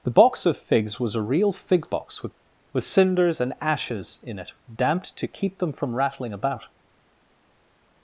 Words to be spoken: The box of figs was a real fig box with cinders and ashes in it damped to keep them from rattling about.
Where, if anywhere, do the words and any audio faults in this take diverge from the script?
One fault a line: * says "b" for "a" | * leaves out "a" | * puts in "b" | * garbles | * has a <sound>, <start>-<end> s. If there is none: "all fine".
* puts in "with"